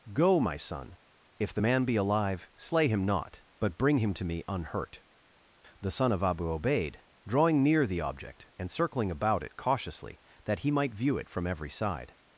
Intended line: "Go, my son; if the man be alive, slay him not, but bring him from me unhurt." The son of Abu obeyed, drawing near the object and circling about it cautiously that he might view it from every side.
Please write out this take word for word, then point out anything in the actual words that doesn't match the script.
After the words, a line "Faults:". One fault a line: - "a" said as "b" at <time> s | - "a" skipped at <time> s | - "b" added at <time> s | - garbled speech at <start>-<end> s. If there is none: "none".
"Go, my son; if the man be alive, slay him not, but bring him to me unhurt." The son of Abu obeyed, drawing near the object and circling about it cautiously that he might view it from every side.
Faults:
- "from" said as "to" at 4.1 s